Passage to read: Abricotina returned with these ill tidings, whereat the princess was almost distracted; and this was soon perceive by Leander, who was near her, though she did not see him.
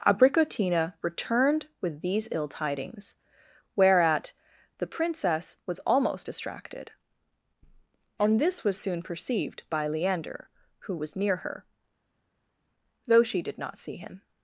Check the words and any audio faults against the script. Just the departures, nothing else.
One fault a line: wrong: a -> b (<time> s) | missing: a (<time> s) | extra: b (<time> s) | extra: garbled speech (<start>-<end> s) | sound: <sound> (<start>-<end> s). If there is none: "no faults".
wrong: perceive -> perceived (9.0 s)